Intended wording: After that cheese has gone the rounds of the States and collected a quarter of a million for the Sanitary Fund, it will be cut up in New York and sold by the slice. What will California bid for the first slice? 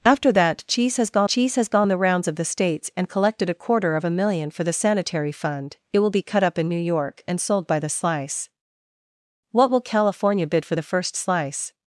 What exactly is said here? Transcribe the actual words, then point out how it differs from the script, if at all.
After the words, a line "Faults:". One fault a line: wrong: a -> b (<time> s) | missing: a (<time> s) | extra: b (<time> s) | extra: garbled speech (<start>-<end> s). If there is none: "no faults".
After that cheese has gone cheese has gone the rounds of the States and collected a quarter of a million for the Sanitary Fund, it will be cut up in New York and sold by the slice. What will California bid for the first slice?
Faults:
extra: cheese has gone (1.3 s)